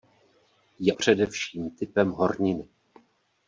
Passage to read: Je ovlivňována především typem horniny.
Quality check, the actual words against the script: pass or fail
fail